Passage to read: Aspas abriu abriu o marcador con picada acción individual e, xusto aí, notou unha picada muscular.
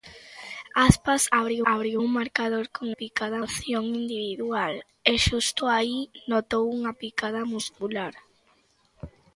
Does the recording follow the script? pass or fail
pass